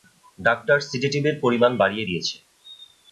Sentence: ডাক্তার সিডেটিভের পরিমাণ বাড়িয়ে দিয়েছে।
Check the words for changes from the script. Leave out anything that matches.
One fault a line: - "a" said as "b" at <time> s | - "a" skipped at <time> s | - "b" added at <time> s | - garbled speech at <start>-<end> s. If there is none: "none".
none